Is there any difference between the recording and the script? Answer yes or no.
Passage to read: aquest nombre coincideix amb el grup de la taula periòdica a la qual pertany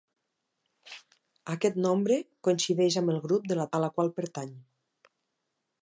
yes